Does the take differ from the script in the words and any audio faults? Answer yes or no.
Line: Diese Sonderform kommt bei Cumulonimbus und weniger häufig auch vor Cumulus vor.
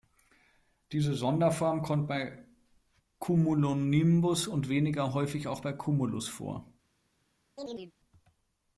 yes